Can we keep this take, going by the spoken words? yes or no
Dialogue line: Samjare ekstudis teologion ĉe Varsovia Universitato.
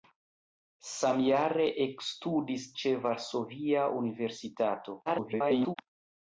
no